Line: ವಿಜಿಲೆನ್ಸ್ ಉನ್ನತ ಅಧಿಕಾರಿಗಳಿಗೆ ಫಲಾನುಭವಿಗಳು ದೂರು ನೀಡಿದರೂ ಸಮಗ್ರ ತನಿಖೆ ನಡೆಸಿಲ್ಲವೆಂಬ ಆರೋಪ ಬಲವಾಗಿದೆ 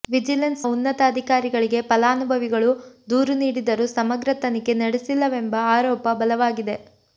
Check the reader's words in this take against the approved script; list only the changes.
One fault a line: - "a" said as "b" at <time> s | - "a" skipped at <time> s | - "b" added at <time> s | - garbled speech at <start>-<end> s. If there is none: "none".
none